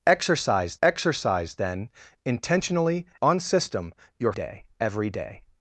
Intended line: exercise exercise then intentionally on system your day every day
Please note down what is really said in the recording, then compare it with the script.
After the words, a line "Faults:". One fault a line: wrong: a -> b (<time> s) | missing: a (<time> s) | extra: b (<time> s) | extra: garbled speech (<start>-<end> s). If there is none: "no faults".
exercise exercise then intentionally on system your day every day
Faults:
no faults